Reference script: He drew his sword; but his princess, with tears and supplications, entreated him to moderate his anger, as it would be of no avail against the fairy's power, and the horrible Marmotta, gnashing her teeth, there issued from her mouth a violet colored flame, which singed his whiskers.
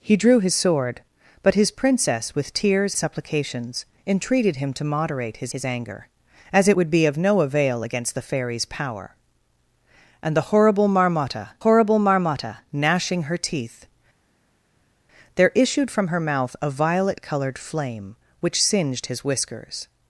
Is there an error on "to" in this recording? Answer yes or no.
no